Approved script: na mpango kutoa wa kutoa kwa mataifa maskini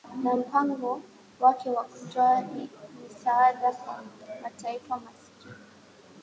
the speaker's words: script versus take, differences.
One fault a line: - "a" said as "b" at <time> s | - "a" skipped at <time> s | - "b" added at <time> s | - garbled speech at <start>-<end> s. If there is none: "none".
- "kutoa" said as "wake" at 1.4 s
- "misaada" added at 3.0 s